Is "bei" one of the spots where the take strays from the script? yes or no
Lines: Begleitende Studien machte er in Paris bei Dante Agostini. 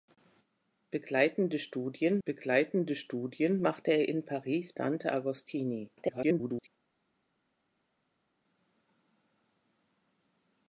yes